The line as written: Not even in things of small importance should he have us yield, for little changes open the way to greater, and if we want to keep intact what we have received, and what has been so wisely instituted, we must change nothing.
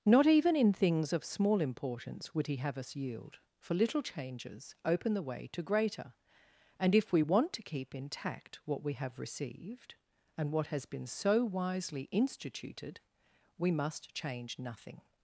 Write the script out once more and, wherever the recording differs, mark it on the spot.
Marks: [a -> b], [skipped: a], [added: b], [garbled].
Not even in things of small importance [should -> would] he have us yield, for little changes open the way to greater, and if we want to keep intact what we have received, and what has been so wisely instituted, we must change nothing.